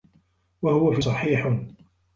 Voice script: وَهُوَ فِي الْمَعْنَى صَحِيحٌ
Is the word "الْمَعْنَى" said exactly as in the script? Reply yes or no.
no